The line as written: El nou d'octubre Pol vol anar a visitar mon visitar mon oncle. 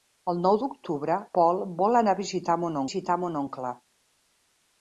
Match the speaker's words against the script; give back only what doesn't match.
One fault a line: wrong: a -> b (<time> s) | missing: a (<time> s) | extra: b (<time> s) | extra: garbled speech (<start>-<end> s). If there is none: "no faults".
no faults